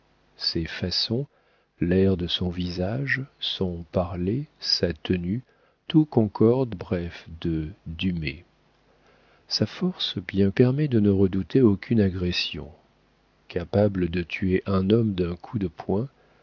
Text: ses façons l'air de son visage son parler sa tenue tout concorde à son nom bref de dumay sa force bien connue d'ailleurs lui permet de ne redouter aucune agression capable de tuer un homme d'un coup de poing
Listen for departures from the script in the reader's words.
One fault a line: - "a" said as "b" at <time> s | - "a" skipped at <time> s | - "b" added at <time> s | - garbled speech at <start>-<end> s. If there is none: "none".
- "à son nom" skipped at 6.8 s
- "connue d'ailleurs lui" skipped at 10.5 s